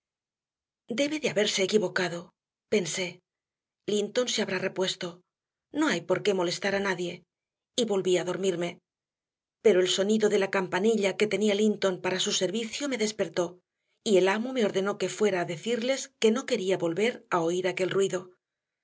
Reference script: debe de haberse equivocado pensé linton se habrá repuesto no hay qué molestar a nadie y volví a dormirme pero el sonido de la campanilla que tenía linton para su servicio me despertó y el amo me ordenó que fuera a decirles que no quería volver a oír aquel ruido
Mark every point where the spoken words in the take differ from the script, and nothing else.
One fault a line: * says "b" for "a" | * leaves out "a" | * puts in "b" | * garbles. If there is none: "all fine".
* puts in "por"